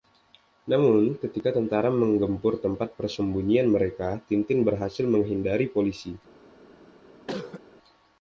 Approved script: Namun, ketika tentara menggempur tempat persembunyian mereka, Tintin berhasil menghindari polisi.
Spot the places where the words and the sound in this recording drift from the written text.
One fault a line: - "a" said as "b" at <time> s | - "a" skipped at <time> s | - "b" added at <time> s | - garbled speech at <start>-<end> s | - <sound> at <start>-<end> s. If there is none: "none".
- cough at 7.3-7.6 s